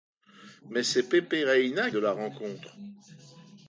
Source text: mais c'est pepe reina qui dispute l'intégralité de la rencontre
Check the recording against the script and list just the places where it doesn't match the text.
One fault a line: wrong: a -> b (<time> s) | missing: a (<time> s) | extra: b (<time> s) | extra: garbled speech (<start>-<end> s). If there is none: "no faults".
missing: qui dispute l'intégralité (1.9 s)